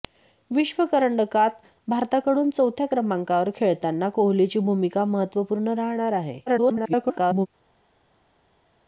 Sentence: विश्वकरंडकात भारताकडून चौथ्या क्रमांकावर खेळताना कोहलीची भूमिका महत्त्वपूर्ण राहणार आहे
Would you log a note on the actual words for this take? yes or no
yes